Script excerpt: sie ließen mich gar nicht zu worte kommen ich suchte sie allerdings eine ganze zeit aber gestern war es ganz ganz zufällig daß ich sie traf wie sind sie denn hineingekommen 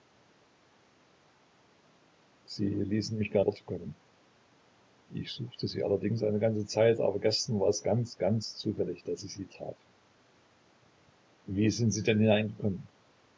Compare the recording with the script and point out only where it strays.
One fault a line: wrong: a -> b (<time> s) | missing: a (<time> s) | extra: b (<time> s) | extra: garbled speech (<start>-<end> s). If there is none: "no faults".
missing: nicht zu (3.4 s)